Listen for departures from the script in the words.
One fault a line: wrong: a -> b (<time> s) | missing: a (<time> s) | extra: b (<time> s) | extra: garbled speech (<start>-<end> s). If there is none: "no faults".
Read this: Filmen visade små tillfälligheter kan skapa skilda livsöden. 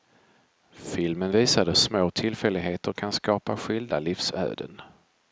no faults